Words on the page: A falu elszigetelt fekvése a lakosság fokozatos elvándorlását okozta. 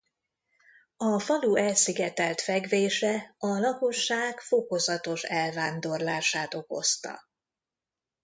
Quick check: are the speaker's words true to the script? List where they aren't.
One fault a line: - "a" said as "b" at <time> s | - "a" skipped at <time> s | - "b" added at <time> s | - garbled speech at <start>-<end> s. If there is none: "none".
none